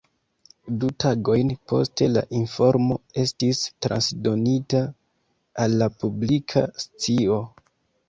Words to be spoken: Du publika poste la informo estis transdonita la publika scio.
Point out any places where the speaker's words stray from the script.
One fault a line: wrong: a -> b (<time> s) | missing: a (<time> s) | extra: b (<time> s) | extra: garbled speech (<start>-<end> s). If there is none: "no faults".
wrong: publika -> tagojn (1.0 s)
extra: al (5.7 s)